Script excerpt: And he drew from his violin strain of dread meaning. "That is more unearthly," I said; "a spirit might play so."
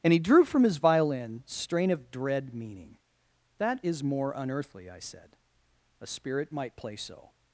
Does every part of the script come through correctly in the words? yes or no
yes